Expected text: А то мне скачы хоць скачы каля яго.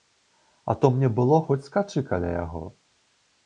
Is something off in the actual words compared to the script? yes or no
yes